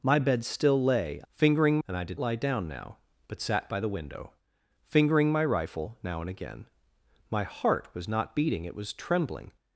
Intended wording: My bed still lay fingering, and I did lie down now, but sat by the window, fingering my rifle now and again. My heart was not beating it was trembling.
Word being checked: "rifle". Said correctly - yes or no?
yes